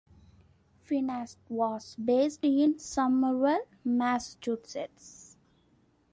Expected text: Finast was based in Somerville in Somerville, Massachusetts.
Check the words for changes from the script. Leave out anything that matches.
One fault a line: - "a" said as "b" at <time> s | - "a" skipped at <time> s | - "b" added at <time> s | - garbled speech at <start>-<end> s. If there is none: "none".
- "in Somerville" skipped at 3.6 s